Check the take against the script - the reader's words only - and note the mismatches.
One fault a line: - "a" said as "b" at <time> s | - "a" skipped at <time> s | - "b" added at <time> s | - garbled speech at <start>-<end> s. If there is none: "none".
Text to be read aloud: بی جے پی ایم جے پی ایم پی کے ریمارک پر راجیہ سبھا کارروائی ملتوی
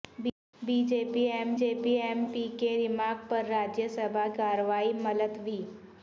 none